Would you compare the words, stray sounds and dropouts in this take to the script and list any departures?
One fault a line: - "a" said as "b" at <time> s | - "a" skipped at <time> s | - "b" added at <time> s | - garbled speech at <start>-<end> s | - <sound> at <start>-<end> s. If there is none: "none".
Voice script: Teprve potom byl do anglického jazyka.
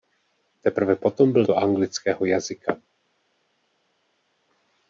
none